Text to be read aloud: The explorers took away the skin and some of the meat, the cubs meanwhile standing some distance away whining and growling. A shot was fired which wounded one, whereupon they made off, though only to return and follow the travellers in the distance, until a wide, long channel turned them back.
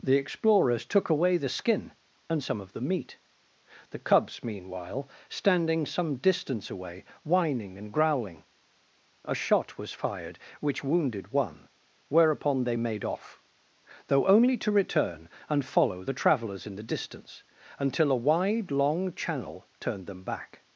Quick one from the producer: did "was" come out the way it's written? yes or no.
yes